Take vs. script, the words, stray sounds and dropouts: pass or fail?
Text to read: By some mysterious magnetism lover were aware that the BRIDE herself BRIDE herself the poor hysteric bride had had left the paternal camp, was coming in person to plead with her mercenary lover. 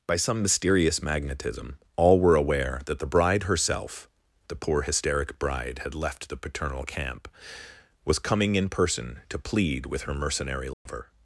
fail